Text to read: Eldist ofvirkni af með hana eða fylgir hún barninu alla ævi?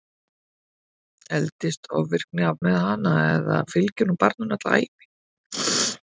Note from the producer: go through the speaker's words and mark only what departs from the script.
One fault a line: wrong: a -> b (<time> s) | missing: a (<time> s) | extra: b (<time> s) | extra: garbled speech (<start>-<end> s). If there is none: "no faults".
no faults